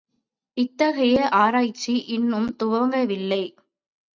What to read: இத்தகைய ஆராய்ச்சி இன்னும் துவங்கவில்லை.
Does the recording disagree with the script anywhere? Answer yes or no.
no